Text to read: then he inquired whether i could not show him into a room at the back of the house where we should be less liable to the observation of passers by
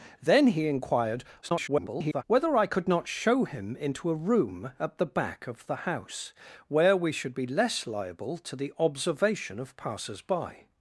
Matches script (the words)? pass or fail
fail